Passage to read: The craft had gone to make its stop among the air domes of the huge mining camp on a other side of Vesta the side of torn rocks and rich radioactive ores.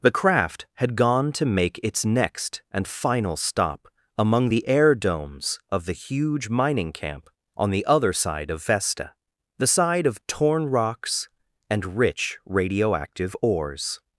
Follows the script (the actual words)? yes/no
no